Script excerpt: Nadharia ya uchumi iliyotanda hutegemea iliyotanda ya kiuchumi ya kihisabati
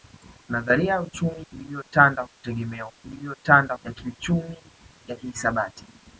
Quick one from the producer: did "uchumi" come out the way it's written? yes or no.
yes